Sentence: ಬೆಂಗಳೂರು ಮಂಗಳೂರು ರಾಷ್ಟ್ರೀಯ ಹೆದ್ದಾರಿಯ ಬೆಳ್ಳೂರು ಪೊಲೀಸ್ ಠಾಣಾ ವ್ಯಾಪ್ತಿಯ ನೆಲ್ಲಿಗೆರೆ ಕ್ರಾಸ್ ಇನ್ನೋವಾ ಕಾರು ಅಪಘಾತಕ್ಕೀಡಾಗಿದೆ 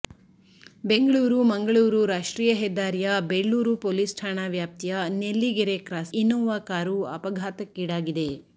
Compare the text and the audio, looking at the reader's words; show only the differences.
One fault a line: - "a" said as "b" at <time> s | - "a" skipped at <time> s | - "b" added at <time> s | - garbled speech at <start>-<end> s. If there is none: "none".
none